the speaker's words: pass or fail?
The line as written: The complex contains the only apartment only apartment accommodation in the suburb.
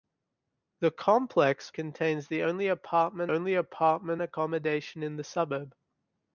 pass